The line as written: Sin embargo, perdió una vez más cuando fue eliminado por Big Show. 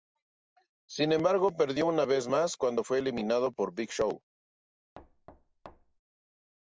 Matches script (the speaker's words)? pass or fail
pass